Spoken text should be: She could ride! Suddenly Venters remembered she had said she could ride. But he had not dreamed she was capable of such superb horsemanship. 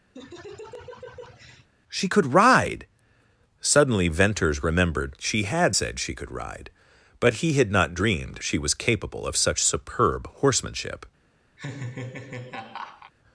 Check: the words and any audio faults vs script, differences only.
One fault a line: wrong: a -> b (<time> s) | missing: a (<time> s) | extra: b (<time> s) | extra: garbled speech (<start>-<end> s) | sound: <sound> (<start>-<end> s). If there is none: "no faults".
sound: laugh (0.1-1.7 s)
sound: laugh (11.6-13.1 s)